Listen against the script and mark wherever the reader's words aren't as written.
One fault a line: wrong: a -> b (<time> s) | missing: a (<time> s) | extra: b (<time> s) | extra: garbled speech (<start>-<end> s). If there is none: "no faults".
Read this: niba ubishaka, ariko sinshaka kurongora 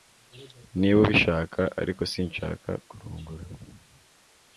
no faults